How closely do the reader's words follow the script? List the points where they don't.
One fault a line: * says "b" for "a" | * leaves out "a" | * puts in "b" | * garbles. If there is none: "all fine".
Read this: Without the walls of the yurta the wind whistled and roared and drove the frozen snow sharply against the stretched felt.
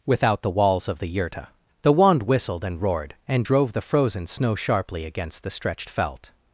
* says "wand" for "wind"